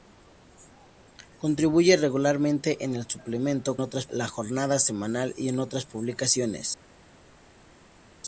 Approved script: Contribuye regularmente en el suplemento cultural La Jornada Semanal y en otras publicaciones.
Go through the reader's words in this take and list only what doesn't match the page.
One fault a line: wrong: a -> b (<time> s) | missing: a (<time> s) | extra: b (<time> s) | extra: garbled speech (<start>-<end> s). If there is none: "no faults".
wrong: cultural -> otras (3.8 s)